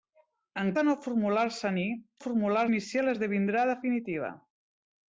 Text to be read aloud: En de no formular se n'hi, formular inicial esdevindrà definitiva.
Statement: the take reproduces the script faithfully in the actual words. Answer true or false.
true